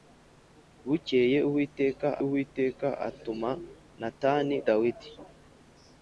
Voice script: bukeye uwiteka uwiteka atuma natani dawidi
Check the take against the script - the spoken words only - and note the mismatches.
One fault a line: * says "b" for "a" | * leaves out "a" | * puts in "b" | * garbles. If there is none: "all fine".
all fine